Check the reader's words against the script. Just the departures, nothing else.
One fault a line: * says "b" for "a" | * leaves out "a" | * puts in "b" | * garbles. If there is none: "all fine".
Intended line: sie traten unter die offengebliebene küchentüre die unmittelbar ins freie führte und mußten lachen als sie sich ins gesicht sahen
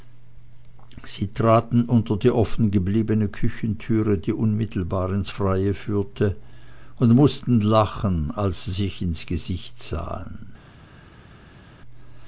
all fine